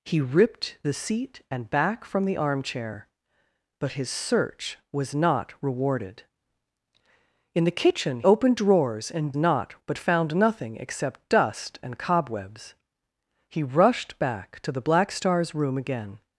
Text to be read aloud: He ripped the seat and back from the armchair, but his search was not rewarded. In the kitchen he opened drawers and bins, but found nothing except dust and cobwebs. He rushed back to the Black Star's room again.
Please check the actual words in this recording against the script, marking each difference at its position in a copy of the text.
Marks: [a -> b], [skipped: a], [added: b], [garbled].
He ripped the seat and back from the armchair, but his search was not rewarded. In the kitchen [skipped: he] opened drawers and [bins, -> not] but found nothing except dust and cobwebs. He rushed back to the Black Star's room again.